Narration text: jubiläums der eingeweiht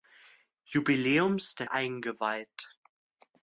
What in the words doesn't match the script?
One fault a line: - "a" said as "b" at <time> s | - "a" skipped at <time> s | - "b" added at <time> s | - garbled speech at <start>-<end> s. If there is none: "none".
none